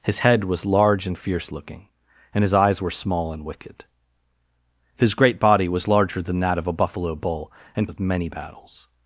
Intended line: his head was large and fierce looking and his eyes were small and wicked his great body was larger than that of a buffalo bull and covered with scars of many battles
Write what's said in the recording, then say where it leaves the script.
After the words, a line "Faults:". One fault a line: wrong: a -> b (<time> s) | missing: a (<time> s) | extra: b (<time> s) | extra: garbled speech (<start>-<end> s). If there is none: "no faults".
his head was large and fierce looking and his eyes were small and wicked his great body was larger than that of a buffalo bull and of many battles
Faults:
missing: covered with scars (7.9 s)